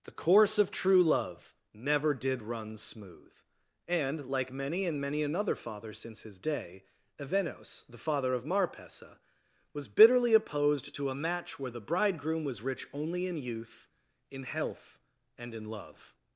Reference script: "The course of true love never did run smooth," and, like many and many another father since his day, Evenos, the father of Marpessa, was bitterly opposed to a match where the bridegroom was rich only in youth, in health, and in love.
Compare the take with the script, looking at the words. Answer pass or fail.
pass